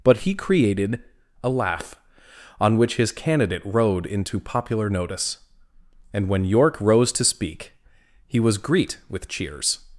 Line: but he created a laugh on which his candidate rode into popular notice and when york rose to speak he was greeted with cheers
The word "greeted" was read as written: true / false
false